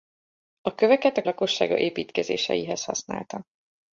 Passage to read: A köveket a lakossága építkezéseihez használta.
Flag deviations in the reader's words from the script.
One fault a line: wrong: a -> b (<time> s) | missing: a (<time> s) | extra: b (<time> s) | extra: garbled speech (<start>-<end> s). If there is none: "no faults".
no faults